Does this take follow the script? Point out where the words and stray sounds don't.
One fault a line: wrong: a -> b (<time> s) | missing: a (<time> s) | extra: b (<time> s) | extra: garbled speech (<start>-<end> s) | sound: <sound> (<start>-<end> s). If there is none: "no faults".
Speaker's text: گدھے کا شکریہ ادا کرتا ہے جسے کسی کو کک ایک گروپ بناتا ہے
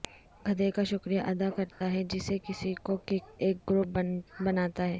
sound: dropout (1.7-1.8 s)